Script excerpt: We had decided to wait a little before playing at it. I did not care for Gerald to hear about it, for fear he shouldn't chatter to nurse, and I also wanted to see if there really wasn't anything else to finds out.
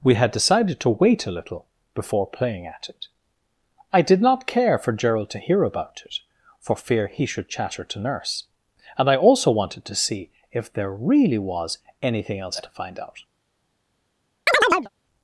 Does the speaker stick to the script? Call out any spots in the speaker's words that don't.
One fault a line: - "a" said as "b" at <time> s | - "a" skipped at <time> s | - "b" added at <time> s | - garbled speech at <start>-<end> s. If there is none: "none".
- "shouldn't" said as "should" at 7.2 s
- "wasn't" said as "was" at 11.4 s
- "finds" said as "find" at 12.7 s